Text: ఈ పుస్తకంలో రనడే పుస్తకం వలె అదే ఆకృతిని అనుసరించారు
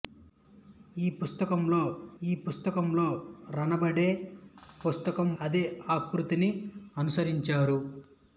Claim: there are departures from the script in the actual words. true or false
true